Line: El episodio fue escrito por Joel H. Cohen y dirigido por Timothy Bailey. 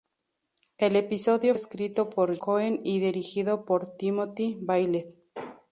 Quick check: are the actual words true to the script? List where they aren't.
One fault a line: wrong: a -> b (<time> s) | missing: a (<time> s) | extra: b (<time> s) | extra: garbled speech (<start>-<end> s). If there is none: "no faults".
missing: fue (1.5 s)
missing: Joel H (2.3 s)